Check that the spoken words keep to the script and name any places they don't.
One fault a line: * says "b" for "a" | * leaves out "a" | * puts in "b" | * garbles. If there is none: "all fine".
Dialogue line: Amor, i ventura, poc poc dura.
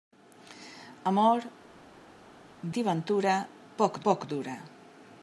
all fine